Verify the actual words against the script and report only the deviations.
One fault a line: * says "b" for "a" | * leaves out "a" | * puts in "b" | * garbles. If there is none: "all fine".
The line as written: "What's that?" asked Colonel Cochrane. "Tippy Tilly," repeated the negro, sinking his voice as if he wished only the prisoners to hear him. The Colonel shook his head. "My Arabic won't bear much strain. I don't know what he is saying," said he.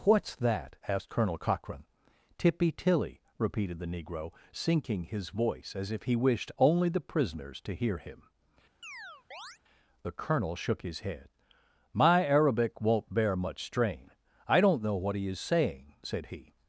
all fine